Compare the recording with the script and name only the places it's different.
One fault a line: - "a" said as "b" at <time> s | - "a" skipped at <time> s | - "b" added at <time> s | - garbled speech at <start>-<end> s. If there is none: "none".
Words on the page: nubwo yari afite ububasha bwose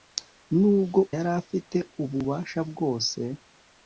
none